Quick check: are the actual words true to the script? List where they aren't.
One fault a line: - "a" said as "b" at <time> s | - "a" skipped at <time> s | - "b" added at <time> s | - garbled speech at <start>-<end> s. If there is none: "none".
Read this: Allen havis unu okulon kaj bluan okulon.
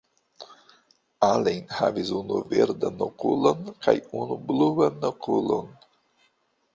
- "verdan" added at 2.5 s
- "unu" added at 4.2 s